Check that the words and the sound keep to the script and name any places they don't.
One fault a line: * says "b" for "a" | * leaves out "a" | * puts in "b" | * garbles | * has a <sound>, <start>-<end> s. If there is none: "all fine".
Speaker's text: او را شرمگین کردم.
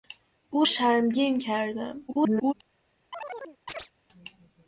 * leaves out "را"
* garbles
* has a chirp, 3.1-3.9 s